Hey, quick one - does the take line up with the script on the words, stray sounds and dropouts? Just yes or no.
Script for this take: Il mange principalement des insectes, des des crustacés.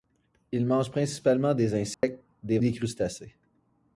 no